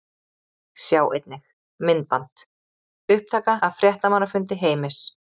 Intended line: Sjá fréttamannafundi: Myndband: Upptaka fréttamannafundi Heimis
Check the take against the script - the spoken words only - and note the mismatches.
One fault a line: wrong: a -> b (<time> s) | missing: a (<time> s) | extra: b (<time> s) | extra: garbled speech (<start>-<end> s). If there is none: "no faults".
wrong: fréttamannafundi -> einnig (1.2 s)
extra: af (3.7 s)